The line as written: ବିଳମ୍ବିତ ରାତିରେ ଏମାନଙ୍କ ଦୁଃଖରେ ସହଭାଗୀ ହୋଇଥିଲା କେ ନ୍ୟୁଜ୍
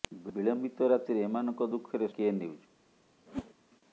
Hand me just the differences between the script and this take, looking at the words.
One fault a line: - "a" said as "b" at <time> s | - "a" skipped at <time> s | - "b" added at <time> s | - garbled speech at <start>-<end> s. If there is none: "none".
- "ସହଭାଗୀ ହୋଇଥିଲା" skipped at 2.1 s